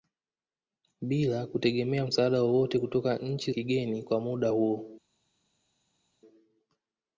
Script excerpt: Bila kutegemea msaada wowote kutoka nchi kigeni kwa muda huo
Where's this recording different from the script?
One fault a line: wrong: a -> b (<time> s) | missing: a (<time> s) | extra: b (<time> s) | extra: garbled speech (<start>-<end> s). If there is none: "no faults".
no faults